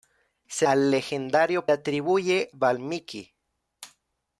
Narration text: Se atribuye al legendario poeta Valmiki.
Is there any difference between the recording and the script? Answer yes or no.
yes